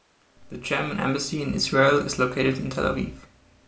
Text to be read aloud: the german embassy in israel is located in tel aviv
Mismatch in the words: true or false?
false